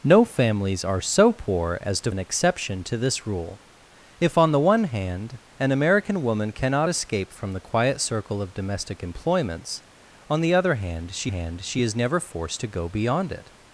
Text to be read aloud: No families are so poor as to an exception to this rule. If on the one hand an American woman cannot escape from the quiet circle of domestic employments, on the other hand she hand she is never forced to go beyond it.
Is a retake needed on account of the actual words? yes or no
no